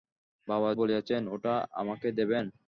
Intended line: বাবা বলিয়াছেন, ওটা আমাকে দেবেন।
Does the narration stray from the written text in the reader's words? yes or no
no